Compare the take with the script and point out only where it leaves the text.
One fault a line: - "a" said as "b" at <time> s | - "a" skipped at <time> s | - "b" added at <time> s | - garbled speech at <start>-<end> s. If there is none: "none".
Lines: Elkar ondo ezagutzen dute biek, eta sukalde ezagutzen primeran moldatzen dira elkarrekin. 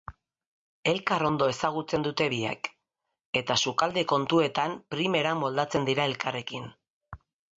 - "ezagutzen" said as "kontuetan" at 4.1 s